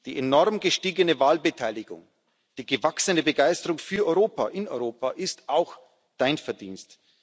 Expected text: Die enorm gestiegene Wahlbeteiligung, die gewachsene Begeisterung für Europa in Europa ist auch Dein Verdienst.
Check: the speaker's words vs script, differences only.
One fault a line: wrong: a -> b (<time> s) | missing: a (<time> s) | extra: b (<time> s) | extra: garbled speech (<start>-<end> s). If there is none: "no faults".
no faults